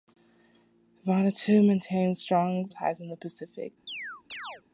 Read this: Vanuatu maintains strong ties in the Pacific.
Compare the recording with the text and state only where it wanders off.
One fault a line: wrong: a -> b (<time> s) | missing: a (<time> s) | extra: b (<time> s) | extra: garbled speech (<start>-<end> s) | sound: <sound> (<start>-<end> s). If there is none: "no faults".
sound: chirp (3.9-4.6 s)